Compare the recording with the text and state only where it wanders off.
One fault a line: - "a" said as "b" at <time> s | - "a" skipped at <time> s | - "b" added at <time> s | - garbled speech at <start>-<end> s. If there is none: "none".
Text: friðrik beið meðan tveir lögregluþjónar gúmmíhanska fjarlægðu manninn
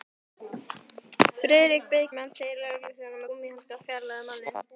none